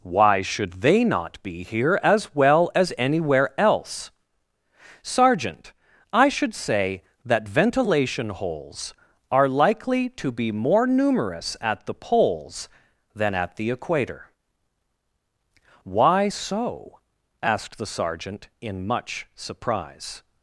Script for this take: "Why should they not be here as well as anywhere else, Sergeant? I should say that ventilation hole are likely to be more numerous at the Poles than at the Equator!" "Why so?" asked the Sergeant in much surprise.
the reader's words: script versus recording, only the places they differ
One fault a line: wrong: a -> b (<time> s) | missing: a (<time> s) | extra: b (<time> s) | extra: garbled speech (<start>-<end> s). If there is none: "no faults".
wrong: hole -> holes (8.3 s)